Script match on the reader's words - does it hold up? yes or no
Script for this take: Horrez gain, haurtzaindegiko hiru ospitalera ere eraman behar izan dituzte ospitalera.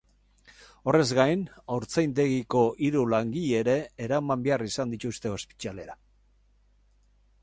no